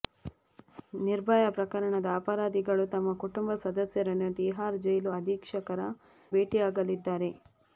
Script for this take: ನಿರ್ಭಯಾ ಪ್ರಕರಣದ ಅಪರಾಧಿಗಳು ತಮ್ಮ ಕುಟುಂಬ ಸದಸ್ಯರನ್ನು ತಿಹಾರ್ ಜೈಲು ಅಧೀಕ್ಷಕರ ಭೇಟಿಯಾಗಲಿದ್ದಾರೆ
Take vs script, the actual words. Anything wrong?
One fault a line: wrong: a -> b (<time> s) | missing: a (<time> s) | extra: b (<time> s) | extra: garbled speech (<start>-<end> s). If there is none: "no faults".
no faults